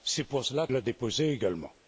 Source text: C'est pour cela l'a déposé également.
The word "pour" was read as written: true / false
true